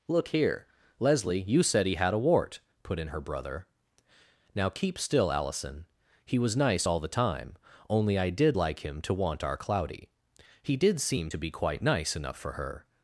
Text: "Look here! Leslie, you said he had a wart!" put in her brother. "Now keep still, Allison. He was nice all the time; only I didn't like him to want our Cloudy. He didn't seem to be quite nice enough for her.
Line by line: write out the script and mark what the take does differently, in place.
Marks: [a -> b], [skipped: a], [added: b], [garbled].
"Look here! Leslie, you said he had a wart!" put in her brother. "Now keep still, Allison. He was nice all the time; only I [didn't -> did] like him to want our Cloudy. He [didn't -> did] seem to be quite nice enough for her.